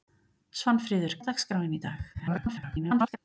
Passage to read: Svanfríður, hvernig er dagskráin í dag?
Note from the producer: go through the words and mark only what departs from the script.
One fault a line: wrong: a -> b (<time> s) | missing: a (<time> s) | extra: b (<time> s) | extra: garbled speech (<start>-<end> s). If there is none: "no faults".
missing: hvernig (1.1 s)
extra: garbled speech (2.1-3.2 s)